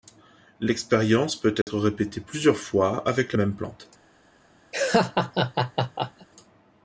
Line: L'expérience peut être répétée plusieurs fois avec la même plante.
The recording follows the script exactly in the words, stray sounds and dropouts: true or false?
false